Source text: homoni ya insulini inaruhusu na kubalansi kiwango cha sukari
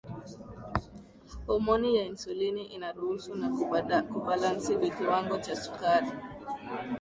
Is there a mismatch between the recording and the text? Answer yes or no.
no